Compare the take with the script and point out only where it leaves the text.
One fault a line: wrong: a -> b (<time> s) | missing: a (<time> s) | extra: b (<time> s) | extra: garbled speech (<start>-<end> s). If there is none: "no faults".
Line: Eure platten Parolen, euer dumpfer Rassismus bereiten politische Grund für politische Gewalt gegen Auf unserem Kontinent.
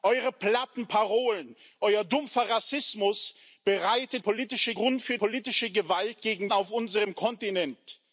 no faults